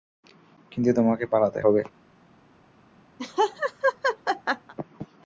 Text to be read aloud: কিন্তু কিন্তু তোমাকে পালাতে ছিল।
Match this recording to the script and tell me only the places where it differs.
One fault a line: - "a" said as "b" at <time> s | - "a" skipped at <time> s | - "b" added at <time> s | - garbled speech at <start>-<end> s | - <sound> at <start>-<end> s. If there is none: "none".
- "কিন্তু" skipped at 0.9 s
- "ছিল" said as "হবে" at 1.6 s
- laugh at 3.2-4.7 s